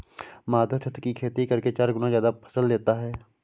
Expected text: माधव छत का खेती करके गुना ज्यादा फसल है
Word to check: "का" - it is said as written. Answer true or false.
false